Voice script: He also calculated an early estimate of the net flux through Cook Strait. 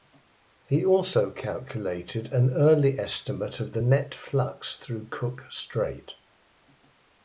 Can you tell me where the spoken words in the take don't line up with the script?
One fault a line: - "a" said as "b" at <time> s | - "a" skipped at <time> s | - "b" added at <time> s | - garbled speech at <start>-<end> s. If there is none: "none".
none